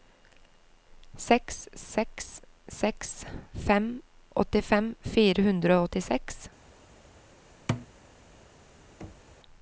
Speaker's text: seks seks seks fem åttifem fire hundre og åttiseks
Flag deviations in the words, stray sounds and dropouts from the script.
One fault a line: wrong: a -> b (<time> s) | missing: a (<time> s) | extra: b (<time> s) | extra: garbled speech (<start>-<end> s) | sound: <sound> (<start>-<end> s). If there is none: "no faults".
sound: thud (7.7-7.9 s)
sound: thud (9.0-9.4 s)